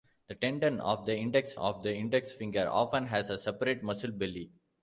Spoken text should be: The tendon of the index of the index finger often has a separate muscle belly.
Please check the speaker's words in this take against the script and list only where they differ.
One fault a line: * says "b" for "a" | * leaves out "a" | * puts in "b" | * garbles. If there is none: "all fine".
all fine